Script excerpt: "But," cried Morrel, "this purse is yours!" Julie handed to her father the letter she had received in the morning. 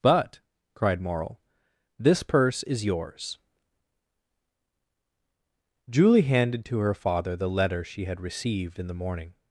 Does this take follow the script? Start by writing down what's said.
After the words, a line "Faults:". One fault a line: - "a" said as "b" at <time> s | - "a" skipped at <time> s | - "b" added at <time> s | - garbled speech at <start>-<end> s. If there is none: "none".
"But," cried Morrel, "this purse is yours!" Julie handed to her father the letter she had received in the morning.
Faults:
none